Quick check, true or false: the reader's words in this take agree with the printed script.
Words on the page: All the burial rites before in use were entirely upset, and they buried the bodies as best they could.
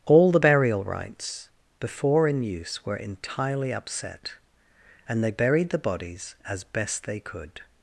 true